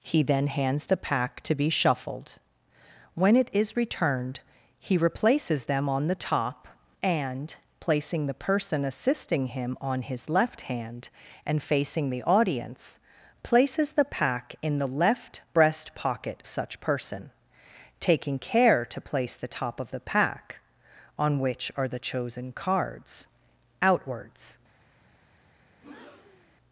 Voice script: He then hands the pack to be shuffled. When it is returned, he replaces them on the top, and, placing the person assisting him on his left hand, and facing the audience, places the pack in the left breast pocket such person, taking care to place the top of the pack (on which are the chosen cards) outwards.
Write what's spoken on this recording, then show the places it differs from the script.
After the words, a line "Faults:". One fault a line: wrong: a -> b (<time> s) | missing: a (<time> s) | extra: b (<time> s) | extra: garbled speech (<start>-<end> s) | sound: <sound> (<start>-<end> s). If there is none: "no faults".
He then hands the pack to be shuffled. When it is returned, he replaces them on the top, and, placing the person assisting him on his left hand, and facing the audience, places the pack in the left breast pocket such person, taking care to place the top of the pack (on which are the chosen cards) outwards.
Faults:
sound: breath (25.7-26.6 s)